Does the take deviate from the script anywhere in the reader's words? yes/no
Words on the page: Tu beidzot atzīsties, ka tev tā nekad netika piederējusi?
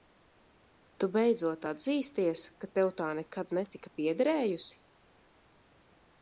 no